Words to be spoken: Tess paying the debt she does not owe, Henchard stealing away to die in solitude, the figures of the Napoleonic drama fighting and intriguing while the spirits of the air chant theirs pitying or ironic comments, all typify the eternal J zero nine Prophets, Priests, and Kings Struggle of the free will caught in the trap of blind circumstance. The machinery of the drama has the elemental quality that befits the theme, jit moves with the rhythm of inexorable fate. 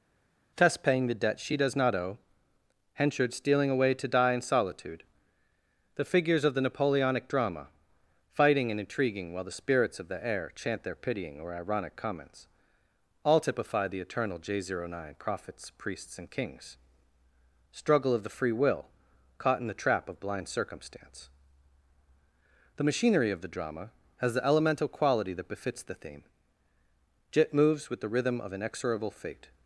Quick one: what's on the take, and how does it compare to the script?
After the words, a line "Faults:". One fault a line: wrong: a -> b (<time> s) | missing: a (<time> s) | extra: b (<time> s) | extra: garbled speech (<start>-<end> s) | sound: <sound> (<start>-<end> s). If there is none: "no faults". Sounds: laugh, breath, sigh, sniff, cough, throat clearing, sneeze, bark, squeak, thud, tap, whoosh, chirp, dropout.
Tess paying the debt she does not owe, Henchard stealing away to die in solitude, the figures of the Napoleonic drama fighting and intriguing while the spirits of the air chant their pitying or ironic comments, all typify the eternal J zero nine Prophets, Priests, and Kings Struggle of the free will caught in the trap of blind circumstance. The machinery of the drama has the elemental quality that befits the theme, jit moves with the rhythm of inexorable fate.
Faults:
wrong: theirs -> their (10.8 s)